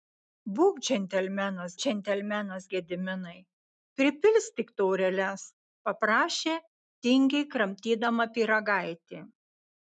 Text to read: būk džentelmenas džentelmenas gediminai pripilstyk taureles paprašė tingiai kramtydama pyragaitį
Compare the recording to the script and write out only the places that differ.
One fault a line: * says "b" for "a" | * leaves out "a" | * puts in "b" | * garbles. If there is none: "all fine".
all fine